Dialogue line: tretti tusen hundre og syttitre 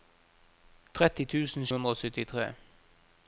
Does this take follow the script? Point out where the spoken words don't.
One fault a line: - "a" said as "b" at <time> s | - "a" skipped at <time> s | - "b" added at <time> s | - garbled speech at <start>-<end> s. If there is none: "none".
none